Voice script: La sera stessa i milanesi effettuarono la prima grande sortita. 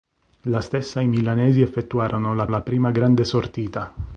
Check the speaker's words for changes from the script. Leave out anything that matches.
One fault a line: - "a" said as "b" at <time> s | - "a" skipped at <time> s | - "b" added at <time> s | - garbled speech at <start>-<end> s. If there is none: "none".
- "sera" skipped at 0.6 s
- "la" added at 2.5 s